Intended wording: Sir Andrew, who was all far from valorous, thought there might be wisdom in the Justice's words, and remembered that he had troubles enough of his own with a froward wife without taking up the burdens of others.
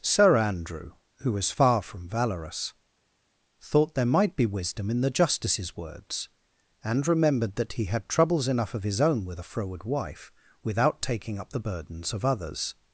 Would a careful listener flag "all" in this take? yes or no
yes